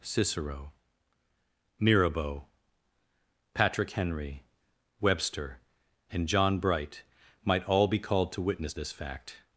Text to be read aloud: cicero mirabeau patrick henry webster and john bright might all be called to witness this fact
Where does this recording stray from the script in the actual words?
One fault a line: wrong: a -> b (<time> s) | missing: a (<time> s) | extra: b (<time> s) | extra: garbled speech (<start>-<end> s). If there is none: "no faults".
no faults